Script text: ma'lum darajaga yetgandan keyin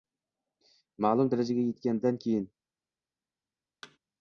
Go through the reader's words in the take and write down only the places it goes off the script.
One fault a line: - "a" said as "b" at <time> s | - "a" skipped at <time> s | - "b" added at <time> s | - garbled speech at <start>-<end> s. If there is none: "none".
none